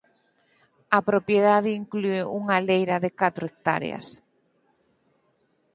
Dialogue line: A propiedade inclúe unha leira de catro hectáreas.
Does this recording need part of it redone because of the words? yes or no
no